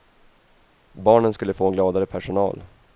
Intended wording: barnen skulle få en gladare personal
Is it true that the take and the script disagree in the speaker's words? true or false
false